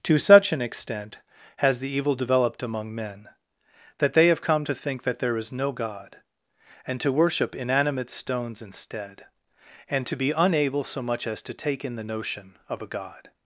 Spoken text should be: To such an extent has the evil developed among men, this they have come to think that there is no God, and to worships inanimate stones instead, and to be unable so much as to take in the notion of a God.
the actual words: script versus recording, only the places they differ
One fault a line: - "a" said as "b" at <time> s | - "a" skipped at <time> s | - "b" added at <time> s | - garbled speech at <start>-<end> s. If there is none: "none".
- "this" said as "that" at 4.0 s
- "worships" said as "worship" at 7.1 s